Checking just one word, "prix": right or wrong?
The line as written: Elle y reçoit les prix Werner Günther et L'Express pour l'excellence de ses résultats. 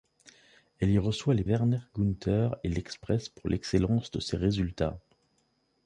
wrong